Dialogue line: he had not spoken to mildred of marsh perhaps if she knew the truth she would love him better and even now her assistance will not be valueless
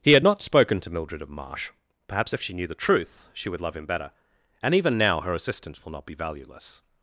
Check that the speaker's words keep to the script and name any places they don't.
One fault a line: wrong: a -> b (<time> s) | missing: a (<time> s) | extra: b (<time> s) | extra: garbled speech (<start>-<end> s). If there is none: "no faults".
no faults